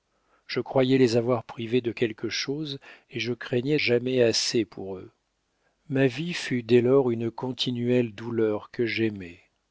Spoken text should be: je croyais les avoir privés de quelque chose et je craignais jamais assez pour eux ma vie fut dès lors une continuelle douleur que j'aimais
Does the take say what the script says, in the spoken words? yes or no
yes